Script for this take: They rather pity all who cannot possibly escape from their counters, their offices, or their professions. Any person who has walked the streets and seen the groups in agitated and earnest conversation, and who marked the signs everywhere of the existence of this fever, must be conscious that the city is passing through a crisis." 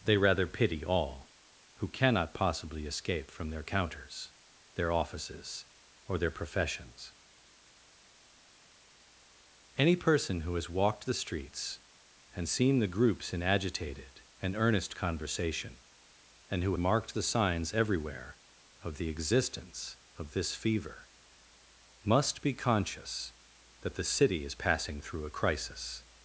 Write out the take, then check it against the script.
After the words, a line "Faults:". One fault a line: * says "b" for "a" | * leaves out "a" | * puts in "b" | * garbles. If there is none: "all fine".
They rather pity all who cannot possibly escape from their counters, their offices, or their professions. Any person who has walked the streets and seen the groups in agitated and earnest conversation, and who marked the signs everywhere of the existence of this fever, must be conscious that the city is passing through a crisis."
Faults:
all fine